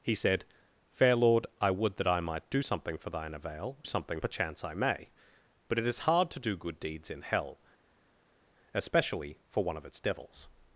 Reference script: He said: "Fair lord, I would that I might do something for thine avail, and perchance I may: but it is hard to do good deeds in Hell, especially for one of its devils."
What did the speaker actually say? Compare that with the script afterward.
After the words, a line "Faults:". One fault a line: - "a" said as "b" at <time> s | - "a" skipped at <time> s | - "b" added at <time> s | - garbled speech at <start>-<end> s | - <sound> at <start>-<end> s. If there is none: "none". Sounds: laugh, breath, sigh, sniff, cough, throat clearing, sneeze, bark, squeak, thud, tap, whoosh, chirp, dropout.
He said: "Fair lord, I would that I might do something for thine avail, something perchance I may: but it is hard to do good deeds in Hell, especially for one of its devils."
Faults:
- "and" said as "something" at 3.8 s